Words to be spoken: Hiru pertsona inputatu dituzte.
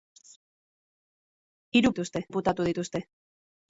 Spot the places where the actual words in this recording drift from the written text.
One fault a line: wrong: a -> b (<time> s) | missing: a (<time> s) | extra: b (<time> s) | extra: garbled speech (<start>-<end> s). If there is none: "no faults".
wrong: pertsona -> dituzte (1.9 s)